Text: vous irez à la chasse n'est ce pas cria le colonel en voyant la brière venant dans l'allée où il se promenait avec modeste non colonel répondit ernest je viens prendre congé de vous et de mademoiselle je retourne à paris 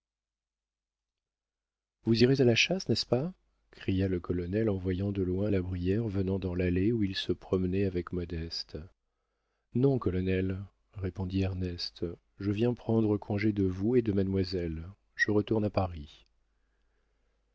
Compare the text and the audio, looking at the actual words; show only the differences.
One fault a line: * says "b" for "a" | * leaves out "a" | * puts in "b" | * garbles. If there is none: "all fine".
* puts in "de loin"